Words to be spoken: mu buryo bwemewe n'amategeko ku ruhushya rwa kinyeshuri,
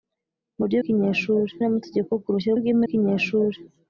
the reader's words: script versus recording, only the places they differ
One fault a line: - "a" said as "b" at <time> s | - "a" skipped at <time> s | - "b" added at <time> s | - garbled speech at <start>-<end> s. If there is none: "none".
- "bwemewe" said as "kinyeshuri" at 0.8 s
- "rwa" said as "bwemewe" at 2.6 s